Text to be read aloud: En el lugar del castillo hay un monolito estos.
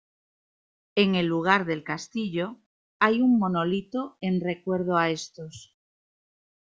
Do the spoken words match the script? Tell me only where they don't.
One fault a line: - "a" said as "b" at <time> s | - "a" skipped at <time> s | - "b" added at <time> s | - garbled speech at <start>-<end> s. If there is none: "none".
- "en recuerdo a" added at 4.2 s